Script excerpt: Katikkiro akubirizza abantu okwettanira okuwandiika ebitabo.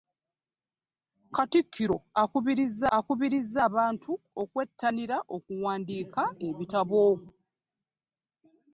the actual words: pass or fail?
fail